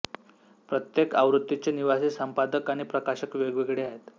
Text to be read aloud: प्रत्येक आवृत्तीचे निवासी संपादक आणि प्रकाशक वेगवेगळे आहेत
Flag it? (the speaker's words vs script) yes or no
no